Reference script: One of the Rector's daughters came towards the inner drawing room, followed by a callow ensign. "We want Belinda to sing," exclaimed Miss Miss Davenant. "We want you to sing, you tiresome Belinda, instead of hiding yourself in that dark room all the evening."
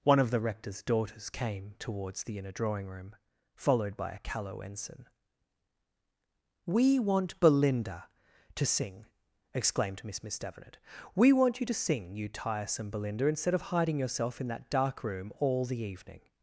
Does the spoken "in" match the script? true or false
true